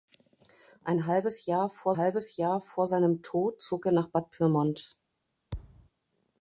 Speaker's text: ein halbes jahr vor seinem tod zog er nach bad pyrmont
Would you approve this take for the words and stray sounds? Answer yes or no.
no